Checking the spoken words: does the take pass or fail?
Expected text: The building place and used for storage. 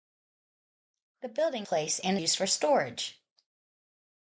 pass